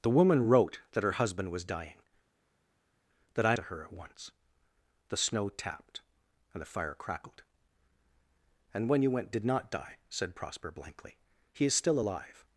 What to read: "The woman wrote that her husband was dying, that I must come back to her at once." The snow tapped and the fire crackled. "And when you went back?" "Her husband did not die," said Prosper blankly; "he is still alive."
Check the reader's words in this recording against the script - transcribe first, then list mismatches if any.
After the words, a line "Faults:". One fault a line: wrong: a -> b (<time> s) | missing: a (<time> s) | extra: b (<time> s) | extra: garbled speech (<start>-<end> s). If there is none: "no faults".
"The woman wrote that her husband was dying, that I to her at once." The snow tapped and the fire crackled. "And when you went did not die," said Prosper blankly; "he is still alive."
Faults:
missing: must come back (3.6 s)
missing: back Her husband (9.3 s)